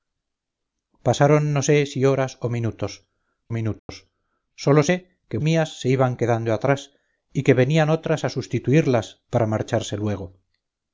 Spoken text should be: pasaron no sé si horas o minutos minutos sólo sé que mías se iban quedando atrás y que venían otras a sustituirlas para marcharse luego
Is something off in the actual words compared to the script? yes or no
no